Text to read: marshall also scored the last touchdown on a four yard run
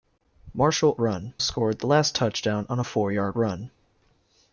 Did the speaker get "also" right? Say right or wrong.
wrong